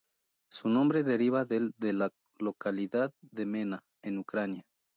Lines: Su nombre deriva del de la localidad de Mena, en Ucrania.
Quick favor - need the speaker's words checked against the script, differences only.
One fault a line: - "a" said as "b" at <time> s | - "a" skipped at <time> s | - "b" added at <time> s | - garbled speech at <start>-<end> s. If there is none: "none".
none